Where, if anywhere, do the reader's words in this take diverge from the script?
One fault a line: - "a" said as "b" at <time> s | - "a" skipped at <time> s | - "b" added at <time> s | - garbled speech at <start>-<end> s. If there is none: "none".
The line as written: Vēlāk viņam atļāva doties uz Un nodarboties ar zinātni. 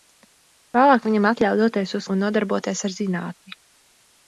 none